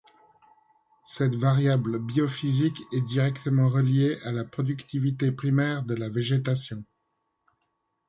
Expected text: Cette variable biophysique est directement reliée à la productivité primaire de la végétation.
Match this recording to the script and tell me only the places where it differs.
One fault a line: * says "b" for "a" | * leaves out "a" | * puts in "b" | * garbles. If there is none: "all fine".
all fine